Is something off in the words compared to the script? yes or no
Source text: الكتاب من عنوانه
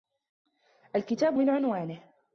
no